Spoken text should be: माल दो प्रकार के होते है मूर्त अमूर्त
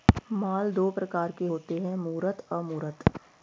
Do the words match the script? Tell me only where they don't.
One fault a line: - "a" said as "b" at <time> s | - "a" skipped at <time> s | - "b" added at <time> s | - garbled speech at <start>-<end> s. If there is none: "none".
none